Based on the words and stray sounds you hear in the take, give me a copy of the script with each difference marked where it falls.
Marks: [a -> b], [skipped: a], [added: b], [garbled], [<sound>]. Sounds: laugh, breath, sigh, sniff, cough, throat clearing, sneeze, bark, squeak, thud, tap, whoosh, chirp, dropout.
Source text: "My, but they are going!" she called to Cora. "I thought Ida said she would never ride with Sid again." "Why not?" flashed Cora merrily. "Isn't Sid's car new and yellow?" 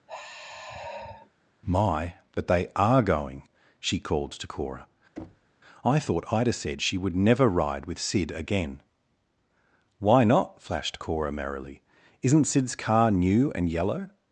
[sigh] "My, but they are going!" she called to Cora. [thud] "I thought Ida said she would never ride with Sid again." "Why not?" flashed Cora merrily. "Isn't Sid's car new and yellow?"